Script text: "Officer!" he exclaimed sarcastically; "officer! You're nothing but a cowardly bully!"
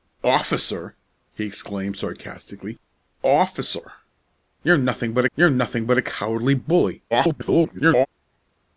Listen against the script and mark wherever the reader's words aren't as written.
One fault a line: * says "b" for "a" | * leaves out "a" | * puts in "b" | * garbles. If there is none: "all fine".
* puts in "you're nothing but"
* garbles